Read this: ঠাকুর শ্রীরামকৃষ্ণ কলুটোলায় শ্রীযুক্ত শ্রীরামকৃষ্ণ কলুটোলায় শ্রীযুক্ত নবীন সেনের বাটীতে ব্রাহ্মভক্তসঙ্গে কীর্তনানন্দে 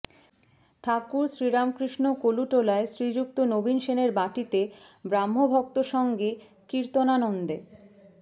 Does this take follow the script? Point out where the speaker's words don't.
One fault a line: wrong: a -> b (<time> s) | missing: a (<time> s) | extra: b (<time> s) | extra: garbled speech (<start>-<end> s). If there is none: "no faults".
missing: শ্রীরামকৃষ্ণ কলুটোলায় শ্রীযুক্ত (3.4 s)